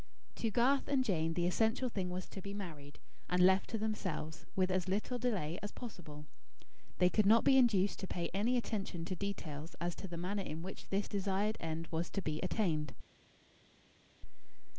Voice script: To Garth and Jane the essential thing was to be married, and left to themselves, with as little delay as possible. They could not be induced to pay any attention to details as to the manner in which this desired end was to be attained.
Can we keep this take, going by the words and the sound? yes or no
yes